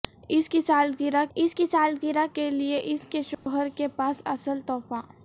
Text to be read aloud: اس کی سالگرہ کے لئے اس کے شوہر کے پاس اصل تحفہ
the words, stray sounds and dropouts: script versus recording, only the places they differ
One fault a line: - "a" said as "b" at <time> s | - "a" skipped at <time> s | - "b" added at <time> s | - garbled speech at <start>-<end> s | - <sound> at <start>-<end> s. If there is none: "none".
- "اس کی سالگرہ" added at 1.4 s
- dropout at 3.3-3.5 s